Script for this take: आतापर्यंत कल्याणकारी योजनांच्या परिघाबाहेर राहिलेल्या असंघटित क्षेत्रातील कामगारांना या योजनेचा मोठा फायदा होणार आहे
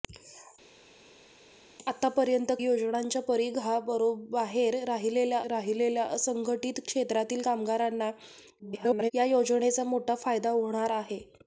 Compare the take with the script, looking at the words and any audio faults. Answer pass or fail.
fail